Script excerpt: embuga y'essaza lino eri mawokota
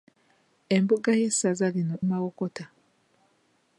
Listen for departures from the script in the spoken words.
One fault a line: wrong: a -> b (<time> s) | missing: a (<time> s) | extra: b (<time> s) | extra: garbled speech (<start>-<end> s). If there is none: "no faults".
missing: eri (1.9 s)